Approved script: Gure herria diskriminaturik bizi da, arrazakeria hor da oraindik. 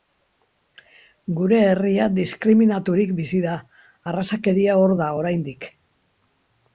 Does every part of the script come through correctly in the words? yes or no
yes